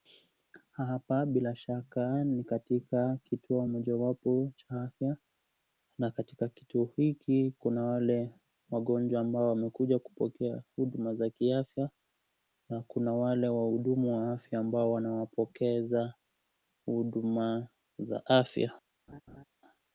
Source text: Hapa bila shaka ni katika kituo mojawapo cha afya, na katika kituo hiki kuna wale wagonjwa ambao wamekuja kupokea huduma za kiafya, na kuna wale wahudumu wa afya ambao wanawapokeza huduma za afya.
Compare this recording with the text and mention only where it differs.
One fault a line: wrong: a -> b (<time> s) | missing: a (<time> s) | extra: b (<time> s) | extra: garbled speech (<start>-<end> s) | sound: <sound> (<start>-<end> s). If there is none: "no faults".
sound: laugh (19.1-19.4 s)